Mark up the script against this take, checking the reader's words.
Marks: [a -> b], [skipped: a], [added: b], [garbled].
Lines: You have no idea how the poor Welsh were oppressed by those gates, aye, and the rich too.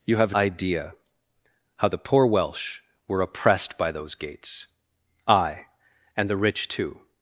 You have [skipped: no] idea how the poor Welsh were oppressed by those gates, aye, and the rich too.